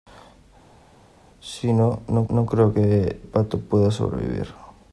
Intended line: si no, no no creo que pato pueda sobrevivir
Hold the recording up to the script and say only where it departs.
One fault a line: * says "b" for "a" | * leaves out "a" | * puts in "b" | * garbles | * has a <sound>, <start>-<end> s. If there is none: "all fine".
all fine